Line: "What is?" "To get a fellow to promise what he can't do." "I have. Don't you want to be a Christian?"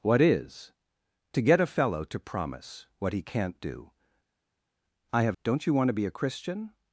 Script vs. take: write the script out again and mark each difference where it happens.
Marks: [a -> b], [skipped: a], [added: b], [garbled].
"What is?" "To get a fellow to promise what he can't do." "I have. Don't you want to be a Christian?"